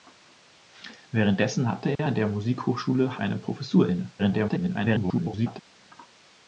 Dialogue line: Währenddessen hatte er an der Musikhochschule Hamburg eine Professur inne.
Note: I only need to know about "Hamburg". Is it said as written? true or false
false